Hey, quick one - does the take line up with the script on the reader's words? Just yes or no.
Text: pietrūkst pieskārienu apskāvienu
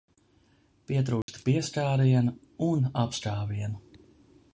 no